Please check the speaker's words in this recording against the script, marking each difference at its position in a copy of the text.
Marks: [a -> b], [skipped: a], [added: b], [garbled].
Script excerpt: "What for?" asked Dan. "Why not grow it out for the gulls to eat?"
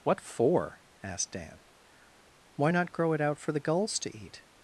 "What for?" asked Dan. "Why not grow it out for the gulls to eat?"